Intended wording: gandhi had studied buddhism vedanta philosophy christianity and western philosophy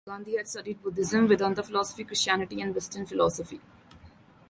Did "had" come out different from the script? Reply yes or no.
no